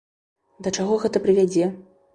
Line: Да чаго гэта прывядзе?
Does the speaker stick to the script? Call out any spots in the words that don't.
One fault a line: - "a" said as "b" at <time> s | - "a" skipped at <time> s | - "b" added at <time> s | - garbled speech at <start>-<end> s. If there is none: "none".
none